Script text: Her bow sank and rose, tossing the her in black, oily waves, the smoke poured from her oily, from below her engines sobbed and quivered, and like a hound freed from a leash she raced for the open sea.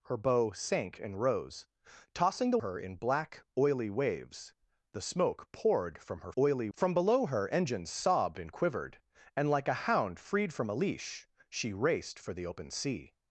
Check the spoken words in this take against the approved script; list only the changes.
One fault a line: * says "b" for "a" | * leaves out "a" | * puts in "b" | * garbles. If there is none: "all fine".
all fine